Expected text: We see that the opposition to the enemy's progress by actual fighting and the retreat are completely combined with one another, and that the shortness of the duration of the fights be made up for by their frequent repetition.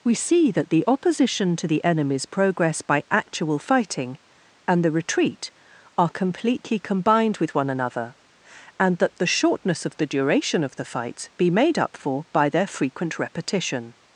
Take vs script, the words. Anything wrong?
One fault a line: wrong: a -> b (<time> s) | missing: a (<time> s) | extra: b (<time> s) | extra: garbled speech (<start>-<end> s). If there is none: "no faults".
no faults